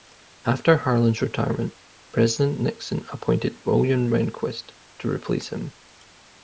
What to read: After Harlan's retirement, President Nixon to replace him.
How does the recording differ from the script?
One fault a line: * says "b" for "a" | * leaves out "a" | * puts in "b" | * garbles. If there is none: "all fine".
* puts in "appointed William Rehnquist"